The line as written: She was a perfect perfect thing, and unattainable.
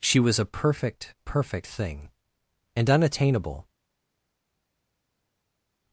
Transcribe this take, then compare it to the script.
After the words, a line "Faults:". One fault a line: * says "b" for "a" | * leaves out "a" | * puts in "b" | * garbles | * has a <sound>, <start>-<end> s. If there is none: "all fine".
She was a perfect perfect thing, and unattainable.
Faults:
all fine